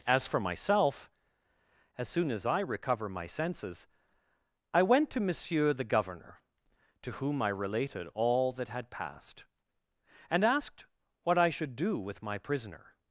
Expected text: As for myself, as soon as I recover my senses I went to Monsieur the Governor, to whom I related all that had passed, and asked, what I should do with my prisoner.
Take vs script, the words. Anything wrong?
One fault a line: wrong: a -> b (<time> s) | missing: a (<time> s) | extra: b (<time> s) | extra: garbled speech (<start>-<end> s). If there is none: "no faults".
no faults